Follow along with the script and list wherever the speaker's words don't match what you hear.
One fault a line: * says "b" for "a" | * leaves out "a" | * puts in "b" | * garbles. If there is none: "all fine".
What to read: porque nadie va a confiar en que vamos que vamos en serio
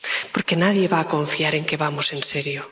* leaves out "que vamos"